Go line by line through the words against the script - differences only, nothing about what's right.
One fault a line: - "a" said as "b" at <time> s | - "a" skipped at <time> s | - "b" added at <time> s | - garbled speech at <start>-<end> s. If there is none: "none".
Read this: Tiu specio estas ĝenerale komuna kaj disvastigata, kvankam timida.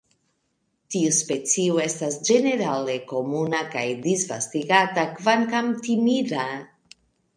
none